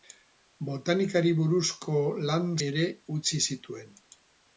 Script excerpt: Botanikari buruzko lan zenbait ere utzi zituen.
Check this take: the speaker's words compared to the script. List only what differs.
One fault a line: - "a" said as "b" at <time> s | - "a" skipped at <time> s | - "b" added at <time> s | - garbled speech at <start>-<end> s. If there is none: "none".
- "zenbait" skipped at 2.5 s